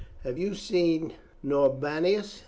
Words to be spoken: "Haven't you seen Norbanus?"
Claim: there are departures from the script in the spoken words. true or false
true